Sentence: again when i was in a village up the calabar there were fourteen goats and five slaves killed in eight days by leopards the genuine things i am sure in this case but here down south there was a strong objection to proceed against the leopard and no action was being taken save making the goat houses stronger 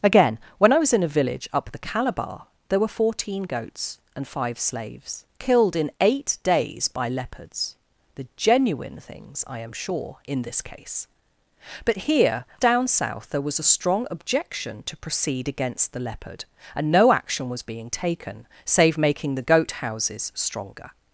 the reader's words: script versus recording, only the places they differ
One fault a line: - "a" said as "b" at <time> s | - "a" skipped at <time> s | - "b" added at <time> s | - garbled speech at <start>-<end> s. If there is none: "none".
none